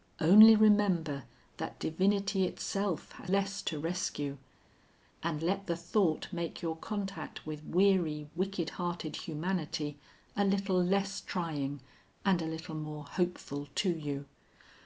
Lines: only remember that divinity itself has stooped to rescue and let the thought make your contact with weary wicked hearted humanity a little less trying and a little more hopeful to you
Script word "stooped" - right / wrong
wrong